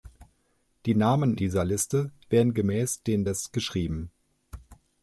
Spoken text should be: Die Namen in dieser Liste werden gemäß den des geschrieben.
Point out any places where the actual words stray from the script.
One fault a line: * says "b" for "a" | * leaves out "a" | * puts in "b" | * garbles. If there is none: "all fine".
* leaves out "in"